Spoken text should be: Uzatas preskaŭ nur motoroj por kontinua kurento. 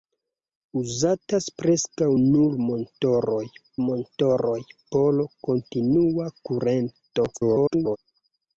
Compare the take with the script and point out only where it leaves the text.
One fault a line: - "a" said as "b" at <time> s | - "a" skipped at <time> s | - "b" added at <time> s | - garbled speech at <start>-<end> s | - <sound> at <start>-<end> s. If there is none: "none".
- "motoroj" added at 3.9 s
- garbled speech at 7.3-8.0 s